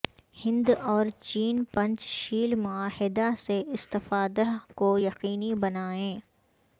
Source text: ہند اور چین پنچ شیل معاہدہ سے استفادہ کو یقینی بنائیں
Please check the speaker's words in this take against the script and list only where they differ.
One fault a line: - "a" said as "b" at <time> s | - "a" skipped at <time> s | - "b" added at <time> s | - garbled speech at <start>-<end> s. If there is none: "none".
none